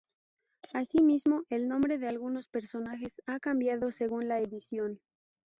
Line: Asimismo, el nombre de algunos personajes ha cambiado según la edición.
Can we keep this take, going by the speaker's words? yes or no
yes